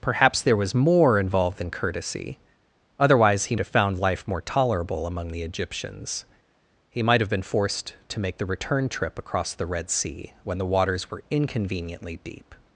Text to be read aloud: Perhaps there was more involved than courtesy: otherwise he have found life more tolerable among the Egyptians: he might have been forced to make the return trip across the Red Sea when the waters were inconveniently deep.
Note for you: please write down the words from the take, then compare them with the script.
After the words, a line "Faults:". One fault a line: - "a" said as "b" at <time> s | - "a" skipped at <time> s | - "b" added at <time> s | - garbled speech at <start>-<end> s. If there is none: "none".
Perhaps there was more involved than courtesy: otherwise he have found life more tolerable among the Egyptians: he might have been forced to make the return trip across the Red Sea when the waters were inconveniently deep.
Faults:
none